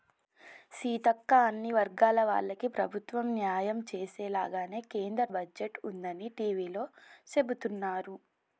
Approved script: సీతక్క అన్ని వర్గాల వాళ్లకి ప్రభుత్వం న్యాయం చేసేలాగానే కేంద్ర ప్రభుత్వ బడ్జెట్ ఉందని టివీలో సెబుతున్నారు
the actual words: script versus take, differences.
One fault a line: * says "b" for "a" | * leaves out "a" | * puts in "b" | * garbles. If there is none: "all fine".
* leaves out "ప్రభుత్వ"